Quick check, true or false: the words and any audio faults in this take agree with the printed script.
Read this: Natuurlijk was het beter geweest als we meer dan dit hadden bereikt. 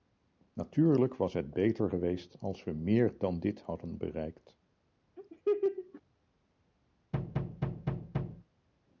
false